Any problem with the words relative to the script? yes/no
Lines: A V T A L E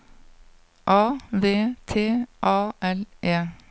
no